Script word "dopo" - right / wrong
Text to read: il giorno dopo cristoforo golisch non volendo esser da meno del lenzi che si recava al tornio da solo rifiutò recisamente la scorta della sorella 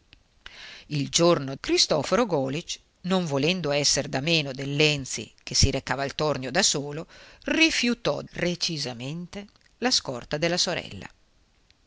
wrong